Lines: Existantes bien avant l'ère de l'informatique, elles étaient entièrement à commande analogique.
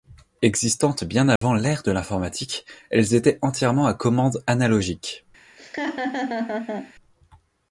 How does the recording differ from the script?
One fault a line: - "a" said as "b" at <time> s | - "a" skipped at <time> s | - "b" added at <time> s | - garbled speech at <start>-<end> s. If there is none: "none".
none